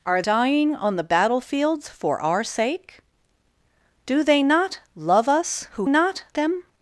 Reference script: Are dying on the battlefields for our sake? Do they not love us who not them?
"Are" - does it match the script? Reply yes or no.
yes